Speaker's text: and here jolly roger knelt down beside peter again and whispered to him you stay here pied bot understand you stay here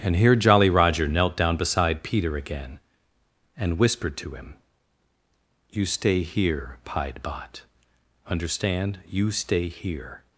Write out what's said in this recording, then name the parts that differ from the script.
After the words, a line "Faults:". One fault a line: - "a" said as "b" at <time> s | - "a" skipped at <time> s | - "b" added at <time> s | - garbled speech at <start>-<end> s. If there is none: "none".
and here jolly roger knelt down beside peter again and whispered to him you stay here pied bot understand you stay here
Faults:
none